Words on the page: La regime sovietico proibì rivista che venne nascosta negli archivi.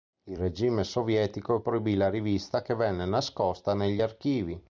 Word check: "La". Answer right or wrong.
wrong